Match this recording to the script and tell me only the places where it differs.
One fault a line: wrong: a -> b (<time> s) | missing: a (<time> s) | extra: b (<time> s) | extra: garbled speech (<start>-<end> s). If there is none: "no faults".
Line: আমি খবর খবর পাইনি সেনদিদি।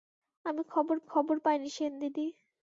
no faults